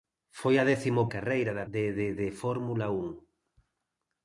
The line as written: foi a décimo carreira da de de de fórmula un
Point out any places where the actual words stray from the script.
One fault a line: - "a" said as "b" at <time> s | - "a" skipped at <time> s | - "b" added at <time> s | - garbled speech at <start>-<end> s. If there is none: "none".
none